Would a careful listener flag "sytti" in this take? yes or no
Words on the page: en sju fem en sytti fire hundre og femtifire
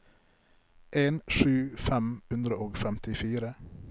yes